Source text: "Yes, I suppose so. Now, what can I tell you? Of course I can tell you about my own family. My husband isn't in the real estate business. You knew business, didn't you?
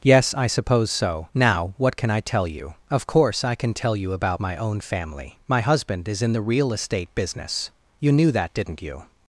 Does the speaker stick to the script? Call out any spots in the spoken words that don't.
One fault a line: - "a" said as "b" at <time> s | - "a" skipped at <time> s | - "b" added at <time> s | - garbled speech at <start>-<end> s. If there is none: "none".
- "isn't" said as "is" at 6.1 s
- "business" said as "that" at 8.3 s